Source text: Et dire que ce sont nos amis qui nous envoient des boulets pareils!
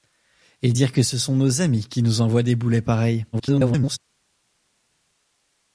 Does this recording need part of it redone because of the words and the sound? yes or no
yes